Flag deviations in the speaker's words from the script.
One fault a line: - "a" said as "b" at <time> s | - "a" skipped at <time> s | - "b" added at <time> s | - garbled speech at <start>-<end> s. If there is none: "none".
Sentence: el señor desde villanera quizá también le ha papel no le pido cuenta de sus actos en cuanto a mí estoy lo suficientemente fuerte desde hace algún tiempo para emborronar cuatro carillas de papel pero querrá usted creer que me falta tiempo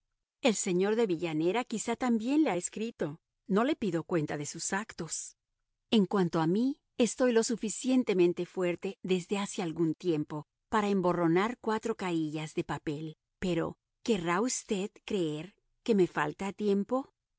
- "desde" said as "de" at 0.9 s
- "papel" said as "escrito" at 2.5 s